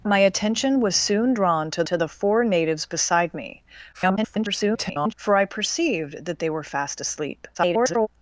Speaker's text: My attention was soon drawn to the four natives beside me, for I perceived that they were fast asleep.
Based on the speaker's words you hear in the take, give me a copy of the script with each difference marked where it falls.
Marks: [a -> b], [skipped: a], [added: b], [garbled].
My attention was soon drawn to [added: to] the four natives beside me, [garbled] for I perceived that they were fast asleep. [garbled]